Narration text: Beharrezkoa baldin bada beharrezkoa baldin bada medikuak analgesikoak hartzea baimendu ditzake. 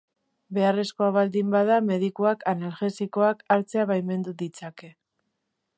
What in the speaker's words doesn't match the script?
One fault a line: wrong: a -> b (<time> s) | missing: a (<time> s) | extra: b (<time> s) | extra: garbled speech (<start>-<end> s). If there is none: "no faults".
missing: beharrezkoa baldin bada (1.8 s)